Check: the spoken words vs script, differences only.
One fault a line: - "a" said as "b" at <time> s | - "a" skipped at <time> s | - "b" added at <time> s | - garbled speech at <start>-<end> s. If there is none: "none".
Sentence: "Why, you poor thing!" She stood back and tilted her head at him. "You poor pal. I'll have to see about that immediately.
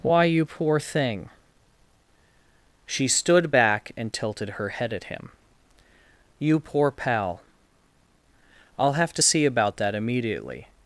none